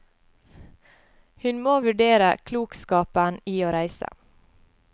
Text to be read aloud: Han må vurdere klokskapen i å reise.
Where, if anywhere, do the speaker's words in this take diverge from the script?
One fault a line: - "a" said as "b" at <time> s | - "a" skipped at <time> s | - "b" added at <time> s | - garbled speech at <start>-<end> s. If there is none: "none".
- "Han" said as "Hun" at 1.4 s